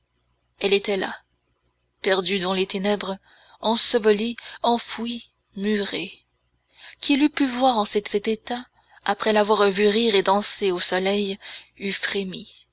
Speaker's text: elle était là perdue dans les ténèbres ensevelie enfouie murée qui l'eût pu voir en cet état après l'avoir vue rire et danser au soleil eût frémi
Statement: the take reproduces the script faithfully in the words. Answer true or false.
false